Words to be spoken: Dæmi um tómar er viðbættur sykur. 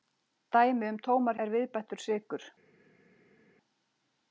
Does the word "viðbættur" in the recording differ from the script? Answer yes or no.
no